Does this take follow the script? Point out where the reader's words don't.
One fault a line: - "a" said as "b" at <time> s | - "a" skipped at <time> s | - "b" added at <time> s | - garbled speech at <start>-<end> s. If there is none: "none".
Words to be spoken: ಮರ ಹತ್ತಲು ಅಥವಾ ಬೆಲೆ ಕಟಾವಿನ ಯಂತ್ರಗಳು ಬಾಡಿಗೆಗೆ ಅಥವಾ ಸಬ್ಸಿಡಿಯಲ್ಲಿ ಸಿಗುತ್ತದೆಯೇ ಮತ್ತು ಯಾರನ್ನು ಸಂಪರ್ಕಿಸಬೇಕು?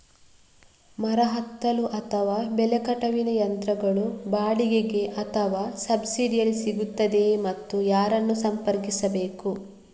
none